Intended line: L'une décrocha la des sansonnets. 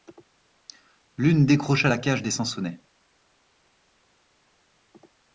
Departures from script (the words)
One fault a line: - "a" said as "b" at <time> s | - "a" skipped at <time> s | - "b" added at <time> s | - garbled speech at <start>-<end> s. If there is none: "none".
- "cage" added at 2.0 s